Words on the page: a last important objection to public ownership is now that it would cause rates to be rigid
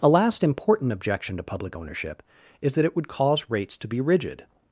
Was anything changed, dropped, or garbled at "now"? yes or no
yes